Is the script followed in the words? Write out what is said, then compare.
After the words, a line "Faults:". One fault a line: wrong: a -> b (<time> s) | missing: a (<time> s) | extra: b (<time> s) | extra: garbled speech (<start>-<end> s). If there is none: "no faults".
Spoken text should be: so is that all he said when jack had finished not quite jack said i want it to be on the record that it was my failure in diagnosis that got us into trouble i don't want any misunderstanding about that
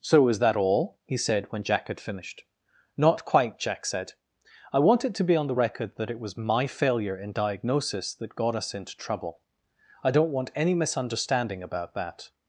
so is that all he said when jack had finished not quite jack said i want it to be on the record that it was my failure in diagnosis that got us into trouble i don't want any misunderstanding about that
Faults:
no faults